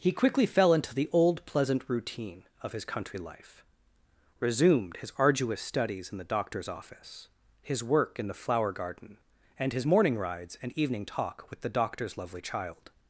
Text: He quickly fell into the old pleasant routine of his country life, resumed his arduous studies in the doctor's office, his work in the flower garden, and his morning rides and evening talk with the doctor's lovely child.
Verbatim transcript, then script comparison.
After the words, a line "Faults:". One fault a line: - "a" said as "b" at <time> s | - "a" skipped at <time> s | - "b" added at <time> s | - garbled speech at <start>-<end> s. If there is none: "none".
He quickly fell into the old pleasant routine of his country life, resumed his arduous studies in the doctor's office, his work in the flower garden, and his morning rides and evening talk with the doctor's lovely child.
Faults:
none